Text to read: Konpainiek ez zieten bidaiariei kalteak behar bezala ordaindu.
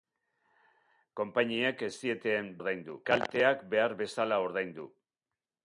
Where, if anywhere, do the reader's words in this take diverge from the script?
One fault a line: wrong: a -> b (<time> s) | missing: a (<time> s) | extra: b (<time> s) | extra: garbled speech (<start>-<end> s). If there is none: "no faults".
wrong: bidaiariei -> ordaindu (2.6 s)